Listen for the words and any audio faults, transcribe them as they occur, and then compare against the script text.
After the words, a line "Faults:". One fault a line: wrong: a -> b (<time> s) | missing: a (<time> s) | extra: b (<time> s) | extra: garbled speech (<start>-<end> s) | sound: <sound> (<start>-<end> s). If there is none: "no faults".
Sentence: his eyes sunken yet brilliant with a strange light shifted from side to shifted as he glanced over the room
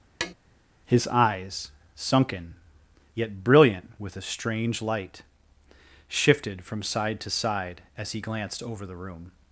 his eyes sunken yet brilliant with a strange light shifted from side to side as he glanced over the room
Faults:
sound: tap (0.2-0.3 s)
wrong: shifted -> side (7.3 s)